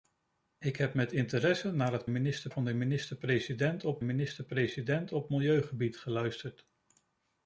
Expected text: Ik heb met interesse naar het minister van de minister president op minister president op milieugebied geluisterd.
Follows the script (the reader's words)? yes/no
yes